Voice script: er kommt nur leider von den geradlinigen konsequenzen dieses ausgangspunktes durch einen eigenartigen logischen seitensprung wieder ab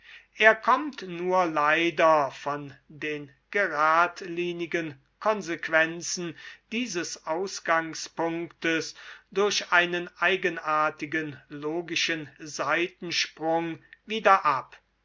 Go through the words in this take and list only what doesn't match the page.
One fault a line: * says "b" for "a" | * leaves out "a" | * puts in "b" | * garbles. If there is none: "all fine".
all fine